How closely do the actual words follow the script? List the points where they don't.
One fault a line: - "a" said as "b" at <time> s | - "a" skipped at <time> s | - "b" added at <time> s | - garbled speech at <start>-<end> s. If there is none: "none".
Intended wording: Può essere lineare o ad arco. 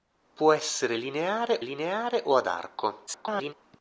- "lineare" added at 1.6 s
- garbled speech at 3.1-3.5 s